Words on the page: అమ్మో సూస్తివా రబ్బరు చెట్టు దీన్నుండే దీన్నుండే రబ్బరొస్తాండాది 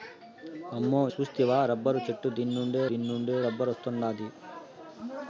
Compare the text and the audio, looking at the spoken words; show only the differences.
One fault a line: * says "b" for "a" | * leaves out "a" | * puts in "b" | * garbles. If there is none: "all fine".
all fine